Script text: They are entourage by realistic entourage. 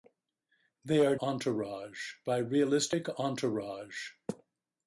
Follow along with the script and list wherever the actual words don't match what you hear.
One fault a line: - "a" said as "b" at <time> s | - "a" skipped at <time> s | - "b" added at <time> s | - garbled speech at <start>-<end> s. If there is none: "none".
none